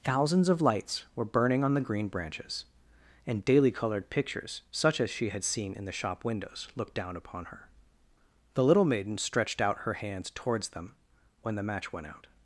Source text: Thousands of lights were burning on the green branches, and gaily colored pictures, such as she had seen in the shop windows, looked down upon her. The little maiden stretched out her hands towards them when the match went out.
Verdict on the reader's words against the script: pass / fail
fail